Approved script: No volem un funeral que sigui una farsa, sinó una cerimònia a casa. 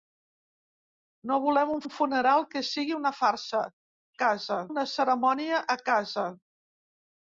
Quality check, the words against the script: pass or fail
fail